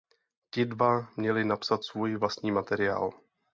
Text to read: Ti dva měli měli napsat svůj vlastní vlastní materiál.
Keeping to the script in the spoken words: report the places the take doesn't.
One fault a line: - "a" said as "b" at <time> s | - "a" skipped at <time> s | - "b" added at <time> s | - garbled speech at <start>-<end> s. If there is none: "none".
- "měli" skipped at 1.4 s
- "vlastní" skipped at 2.5 s